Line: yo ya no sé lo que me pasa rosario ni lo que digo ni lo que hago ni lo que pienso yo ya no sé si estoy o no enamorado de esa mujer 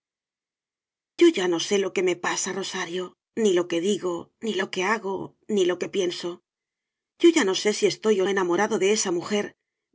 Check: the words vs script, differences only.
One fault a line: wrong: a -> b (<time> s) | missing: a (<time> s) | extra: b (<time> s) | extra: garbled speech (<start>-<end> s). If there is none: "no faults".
missing: no (8.3 s)